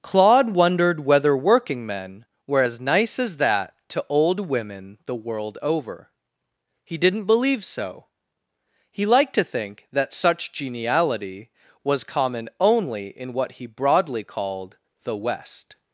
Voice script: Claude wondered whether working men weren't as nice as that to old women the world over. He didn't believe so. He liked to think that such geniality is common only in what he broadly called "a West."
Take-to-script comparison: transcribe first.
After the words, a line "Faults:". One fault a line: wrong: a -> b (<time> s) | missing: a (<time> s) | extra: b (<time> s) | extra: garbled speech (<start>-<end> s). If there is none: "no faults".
Claude wondered whether working men were as nice as that to old women the world over. He didn't believe so. He liked to think that such geniality was common only in what he broadly called "the West."
Faults:
wrong: weren't -> were (2.5 s)
wrong: is -> was (11.8 s)
wrong: a -> the (15.0 s)